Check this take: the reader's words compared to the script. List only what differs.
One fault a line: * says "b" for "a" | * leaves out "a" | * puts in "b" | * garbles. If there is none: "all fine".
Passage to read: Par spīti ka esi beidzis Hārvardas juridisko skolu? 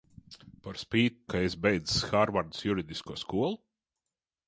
all fine